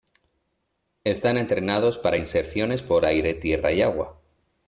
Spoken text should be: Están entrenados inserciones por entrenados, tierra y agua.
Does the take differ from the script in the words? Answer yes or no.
yes